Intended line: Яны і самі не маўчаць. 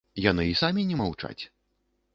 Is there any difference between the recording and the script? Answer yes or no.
no